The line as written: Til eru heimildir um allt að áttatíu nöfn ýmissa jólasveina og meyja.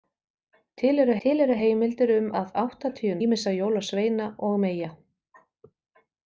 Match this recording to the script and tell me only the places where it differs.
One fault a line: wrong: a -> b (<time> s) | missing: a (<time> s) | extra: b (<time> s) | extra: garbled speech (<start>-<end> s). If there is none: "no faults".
extra: til eru (1.2 s)
missing: allt (2.3 s)
missing: nöfn (3.2 s)